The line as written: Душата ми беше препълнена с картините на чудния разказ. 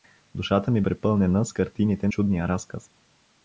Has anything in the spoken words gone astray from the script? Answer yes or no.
yes